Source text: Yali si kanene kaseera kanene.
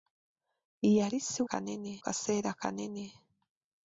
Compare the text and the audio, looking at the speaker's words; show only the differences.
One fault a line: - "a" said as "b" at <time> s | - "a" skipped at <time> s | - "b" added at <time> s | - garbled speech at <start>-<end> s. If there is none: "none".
none